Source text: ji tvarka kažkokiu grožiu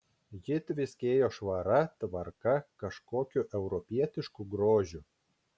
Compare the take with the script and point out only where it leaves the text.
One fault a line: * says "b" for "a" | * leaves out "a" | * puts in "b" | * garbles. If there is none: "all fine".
* puts in "tviskėjo švara"
* puts in "europietišku"